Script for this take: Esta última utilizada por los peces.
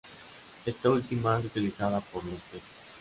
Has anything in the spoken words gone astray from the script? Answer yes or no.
no